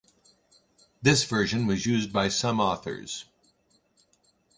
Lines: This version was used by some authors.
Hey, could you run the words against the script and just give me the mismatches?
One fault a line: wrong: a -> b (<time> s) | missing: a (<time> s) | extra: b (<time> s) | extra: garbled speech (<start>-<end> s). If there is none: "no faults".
no faults